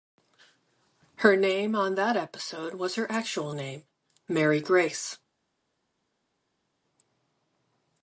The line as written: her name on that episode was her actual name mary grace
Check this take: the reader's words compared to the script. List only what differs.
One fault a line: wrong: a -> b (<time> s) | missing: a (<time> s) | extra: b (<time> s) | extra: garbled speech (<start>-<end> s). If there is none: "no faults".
no faults